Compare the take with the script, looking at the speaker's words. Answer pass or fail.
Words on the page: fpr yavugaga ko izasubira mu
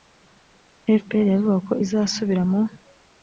pass